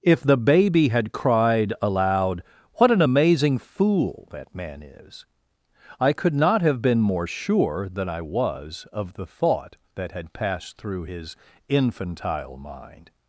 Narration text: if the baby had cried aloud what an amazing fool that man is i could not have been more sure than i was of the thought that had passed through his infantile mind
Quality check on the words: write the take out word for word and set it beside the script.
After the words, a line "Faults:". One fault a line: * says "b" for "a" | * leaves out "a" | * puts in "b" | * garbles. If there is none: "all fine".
if the baby had cried aloud what an amazing fool that man is i could not have been more sure than i was of the thought that had passed through his infantile mind
Faults:
all fine